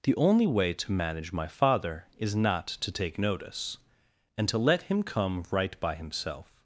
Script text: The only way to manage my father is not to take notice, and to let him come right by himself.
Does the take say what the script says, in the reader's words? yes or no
yes